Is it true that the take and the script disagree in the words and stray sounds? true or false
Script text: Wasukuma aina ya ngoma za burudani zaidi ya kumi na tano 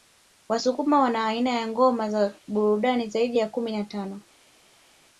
true